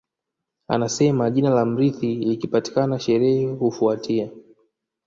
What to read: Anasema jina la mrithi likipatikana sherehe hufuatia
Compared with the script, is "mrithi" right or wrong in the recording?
right